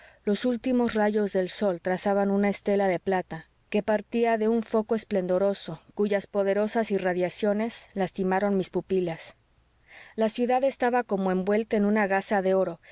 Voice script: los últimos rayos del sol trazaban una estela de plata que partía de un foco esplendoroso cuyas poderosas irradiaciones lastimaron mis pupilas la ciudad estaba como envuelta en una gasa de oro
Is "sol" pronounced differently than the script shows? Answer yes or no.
no